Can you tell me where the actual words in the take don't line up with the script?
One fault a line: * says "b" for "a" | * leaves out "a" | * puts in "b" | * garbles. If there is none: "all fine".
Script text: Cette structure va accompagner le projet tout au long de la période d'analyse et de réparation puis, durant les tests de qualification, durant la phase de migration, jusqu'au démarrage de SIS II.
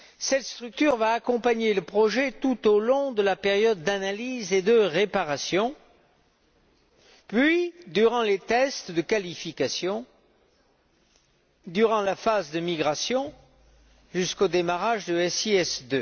all fine